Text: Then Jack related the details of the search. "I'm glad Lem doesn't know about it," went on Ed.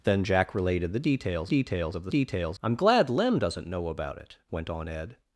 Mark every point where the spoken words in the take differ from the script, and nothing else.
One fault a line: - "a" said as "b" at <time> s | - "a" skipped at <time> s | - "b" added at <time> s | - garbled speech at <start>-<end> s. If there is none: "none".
- "details" added at 1.4 s
- "search" said as "details" at 2.1 s